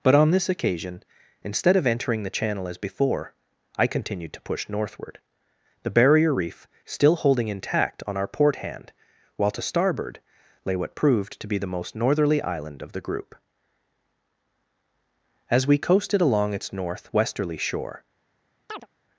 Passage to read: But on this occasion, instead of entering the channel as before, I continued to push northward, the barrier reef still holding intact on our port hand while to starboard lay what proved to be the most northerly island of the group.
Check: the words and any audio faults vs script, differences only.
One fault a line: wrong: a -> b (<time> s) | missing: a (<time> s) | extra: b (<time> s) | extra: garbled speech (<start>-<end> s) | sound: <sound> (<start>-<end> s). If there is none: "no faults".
extra: As we coasted along its north westerly shore (15.5 s)
sound: chirp (18.7-18.9 s)